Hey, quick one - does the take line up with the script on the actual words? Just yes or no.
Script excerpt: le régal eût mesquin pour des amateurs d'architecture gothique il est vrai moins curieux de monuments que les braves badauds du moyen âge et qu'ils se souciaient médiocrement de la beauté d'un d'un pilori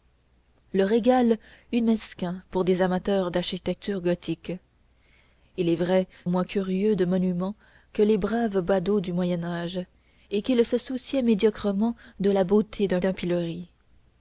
yes